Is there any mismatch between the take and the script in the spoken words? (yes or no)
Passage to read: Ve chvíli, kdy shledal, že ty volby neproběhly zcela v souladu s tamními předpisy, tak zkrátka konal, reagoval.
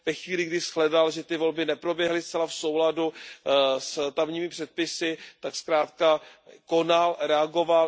no